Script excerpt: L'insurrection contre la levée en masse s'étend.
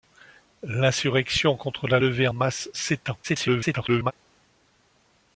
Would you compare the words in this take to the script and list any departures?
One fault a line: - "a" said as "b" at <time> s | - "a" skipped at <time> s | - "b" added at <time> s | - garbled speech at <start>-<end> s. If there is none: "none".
- "en" skipped at 2.3 s
- garbled speech at 3.2-4.1 s